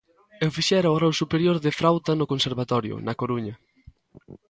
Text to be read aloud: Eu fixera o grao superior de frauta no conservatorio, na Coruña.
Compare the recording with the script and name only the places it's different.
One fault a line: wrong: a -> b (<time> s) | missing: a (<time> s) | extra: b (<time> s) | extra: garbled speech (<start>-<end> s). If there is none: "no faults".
no faults